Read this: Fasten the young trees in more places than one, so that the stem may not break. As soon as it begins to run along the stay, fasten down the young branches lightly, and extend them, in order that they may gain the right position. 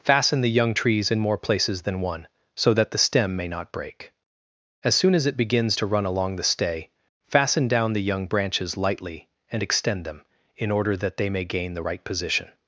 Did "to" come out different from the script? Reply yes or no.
no